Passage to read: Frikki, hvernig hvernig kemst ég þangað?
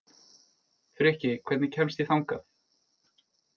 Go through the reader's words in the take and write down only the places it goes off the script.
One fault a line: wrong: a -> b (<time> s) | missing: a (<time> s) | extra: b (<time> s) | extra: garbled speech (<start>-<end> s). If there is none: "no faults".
missing: hvernig (1.7 s)